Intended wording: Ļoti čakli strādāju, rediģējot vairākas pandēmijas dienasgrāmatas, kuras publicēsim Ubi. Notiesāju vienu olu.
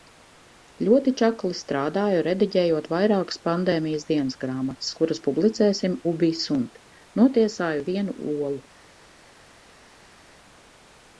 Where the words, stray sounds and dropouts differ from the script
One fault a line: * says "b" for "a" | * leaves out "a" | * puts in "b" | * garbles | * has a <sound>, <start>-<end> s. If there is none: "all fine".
* puts in "Sunt"